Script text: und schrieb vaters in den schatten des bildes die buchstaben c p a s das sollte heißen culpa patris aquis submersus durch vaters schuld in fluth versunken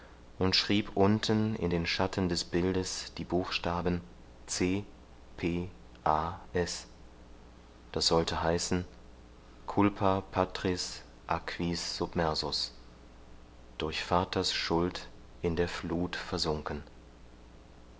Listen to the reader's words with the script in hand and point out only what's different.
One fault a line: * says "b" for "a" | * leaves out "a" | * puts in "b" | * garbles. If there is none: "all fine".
* says "unten" for "vaters"
* puts in "der"